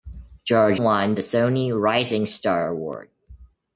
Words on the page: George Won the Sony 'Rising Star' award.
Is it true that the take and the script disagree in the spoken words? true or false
false